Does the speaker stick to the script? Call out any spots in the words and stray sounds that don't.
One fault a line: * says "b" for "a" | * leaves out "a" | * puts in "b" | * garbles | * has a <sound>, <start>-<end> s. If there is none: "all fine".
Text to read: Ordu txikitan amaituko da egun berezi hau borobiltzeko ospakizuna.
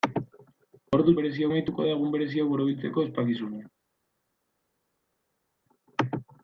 * says "berezi" for "txikitan"